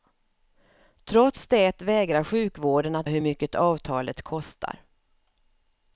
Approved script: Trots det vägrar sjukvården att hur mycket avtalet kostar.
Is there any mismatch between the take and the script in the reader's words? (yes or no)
no